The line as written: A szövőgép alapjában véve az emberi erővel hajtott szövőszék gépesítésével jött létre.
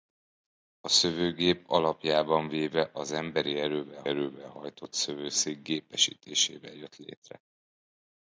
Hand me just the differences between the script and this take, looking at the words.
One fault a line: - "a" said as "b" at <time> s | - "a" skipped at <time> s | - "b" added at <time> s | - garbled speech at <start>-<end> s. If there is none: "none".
- "erővel" added at 4.0 s